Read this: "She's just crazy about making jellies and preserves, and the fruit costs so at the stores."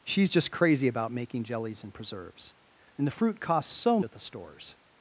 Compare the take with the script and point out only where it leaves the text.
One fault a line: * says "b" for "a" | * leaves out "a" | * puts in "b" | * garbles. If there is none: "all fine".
all fine